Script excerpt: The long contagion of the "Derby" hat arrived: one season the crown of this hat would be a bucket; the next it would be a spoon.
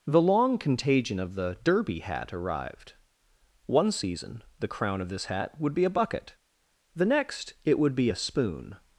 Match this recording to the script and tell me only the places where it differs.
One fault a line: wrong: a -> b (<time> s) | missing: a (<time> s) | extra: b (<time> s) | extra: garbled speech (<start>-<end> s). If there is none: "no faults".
no faults